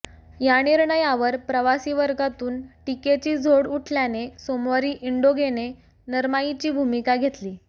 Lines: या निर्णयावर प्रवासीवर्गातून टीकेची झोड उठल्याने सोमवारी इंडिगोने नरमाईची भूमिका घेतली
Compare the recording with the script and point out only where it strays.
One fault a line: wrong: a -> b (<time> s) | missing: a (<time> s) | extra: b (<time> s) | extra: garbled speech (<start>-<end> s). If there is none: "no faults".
no faults